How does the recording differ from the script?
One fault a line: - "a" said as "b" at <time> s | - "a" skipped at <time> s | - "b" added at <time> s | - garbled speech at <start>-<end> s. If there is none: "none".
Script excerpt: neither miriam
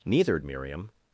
none